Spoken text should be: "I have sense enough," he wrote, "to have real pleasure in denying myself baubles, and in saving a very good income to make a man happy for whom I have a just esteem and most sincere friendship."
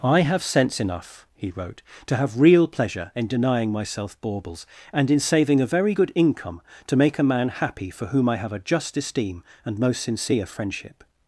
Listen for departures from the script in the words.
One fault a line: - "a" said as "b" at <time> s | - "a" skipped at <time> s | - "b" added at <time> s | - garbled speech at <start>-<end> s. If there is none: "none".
none